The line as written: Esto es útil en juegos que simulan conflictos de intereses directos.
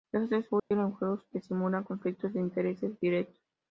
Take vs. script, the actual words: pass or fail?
pass